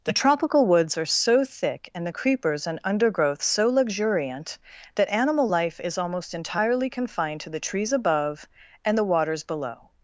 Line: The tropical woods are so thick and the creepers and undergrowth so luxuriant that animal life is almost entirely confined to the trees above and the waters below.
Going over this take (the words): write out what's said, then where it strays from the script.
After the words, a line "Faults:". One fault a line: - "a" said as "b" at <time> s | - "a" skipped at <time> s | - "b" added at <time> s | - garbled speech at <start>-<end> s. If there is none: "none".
The tropical woods are so thick and the creepers and undergrowth so luxuriant that animal life is almost entirely confined to the trees above and the waters below.
Faults:
none